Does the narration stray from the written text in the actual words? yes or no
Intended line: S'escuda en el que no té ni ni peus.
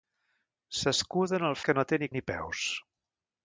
no